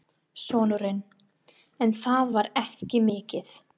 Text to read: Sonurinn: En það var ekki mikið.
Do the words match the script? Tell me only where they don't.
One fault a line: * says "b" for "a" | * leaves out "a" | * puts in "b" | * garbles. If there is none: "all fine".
all fine